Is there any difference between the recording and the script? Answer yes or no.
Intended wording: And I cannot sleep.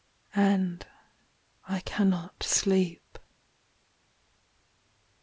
no